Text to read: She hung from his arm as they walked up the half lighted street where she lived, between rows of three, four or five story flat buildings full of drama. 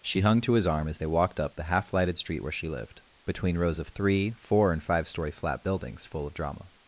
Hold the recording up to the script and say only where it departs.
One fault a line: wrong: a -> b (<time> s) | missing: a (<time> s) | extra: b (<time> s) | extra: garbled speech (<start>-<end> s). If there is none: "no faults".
wrong: from -> to (0.4 s)
wrong: or -> and (4.7 s)